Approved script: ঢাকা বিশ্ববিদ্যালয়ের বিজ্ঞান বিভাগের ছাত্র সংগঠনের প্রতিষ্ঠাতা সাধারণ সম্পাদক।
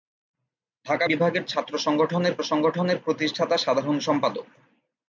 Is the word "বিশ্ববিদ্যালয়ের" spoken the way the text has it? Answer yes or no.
no